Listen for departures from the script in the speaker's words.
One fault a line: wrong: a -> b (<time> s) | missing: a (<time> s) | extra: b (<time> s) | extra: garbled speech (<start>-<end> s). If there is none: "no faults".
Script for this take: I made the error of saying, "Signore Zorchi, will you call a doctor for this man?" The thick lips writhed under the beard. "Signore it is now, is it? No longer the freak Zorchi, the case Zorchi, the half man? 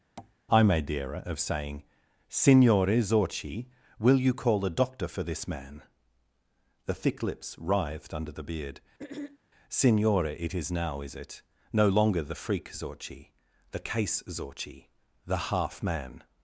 no faults